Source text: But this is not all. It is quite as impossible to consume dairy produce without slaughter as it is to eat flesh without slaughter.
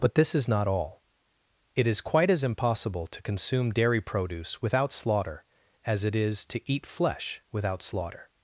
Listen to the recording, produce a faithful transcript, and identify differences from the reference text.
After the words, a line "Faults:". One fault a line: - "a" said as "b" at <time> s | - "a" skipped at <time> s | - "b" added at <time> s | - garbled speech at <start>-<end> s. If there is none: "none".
But this is not all. It is quite as impossible to consume dairy produce without slaughter as it is to eat flesh without slaughter.
Faults:
none